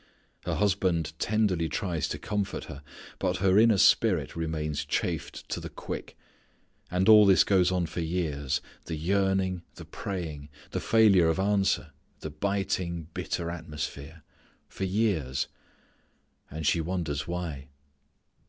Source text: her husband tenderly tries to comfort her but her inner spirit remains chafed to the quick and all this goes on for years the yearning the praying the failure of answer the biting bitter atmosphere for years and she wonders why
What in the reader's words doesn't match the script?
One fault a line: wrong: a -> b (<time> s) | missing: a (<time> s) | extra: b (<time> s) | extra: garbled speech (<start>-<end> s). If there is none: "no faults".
no faults